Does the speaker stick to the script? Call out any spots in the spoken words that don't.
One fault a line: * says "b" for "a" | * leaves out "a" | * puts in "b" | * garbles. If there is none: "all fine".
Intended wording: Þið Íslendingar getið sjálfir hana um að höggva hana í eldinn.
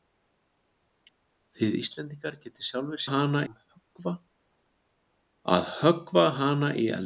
all fine